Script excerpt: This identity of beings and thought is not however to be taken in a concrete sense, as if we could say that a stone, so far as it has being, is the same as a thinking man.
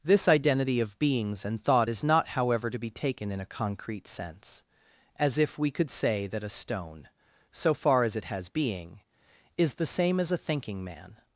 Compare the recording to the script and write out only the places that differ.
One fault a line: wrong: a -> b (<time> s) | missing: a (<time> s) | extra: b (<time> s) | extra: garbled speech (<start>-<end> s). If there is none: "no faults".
no faults